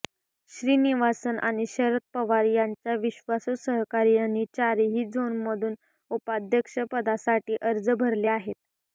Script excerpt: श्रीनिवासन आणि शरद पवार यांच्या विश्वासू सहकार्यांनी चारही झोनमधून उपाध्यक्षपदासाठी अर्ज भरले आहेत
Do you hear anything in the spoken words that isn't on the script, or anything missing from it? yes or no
no